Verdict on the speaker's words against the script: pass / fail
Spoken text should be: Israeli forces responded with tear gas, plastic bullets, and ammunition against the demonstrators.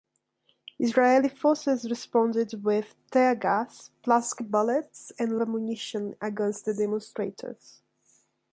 pass